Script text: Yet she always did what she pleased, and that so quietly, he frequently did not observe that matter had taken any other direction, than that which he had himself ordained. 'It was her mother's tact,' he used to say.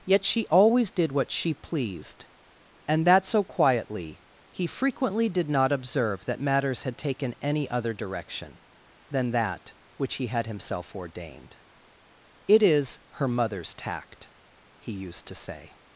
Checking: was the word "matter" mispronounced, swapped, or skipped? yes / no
yes